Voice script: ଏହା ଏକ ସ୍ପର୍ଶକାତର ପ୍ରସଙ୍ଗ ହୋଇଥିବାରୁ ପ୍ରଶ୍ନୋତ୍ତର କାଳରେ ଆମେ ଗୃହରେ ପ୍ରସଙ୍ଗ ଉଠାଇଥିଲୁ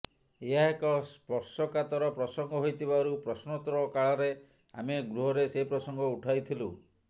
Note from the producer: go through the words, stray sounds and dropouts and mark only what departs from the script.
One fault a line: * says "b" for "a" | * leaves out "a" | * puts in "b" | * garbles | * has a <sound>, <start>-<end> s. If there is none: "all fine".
* puts in "ସେ"